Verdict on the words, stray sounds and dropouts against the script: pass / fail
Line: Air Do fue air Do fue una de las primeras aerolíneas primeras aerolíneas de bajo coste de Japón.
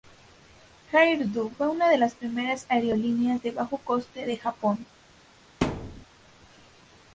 fail